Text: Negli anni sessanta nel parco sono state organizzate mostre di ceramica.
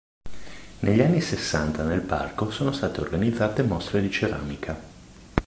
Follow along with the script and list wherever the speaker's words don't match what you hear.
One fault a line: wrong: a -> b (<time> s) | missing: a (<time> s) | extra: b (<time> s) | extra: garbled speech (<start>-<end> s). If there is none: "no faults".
no faults